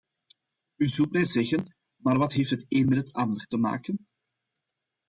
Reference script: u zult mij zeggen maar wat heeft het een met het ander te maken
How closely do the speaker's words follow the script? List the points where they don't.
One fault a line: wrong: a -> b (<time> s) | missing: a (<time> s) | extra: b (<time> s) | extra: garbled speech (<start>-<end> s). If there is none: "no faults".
no faults